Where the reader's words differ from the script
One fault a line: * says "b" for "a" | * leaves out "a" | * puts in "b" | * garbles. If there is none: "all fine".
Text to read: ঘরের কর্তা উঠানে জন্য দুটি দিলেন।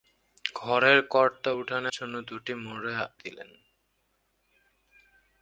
all fine